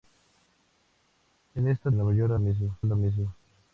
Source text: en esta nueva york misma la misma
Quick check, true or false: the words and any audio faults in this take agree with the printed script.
true